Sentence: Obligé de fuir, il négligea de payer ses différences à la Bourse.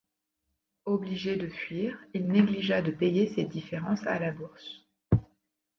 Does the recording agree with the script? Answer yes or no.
yes